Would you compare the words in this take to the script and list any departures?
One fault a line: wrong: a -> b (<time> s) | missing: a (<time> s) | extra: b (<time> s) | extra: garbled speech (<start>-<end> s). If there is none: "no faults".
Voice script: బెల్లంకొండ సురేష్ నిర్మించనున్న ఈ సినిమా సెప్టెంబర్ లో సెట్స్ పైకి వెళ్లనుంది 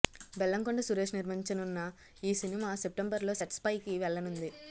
no faults